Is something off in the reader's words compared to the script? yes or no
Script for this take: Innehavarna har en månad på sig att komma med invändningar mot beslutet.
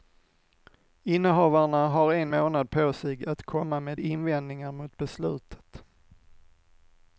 no